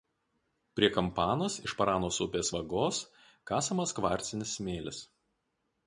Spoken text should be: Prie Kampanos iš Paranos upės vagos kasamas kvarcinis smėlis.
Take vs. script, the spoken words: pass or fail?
pass